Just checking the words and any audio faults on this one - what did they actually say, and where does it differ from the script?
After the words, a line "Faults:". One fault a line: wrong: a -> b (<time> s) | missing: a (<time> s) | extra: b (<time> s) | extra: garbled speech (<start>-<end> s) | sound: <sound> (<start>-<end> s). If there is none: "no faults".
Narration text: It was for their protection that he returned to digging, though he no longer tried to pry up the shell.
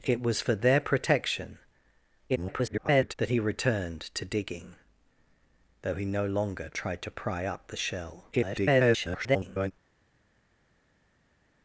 It was for their protection [garbled] that he returned to digging, though he no longer tried to pry up the shell. [garbled]
Faults:
extra: garbled speech (2.3-3.1 s)
extra: garbled speech (8.3-9.7 s)